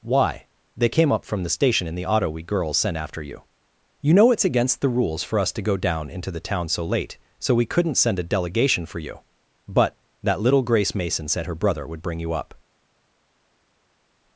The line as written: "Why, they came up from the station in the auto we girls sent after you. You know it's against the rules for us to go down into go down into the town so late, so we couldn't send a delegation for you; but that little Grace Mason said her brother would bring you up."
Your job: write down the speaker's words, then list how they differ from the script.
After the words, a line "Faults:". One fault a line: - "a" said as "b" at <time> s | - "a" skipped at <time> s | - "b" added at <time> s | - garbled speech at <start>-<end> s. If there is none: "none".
"Why, they came up from the station in the auto we girls sent after you. You know it's against the rules for us to go down into the town so late, so we couldn't send a delegation for you; but that little Grace Mason said her brother would bring you up."
Faults:
- "go down into" skipped at 6.3 s